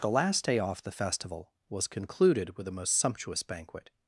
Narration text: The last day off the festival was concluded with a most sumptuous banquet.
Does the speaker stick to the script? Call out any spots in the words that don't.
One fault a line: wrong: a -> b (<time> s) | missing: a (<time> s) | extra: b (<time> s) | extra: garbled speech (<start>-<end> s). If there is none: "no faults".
no faults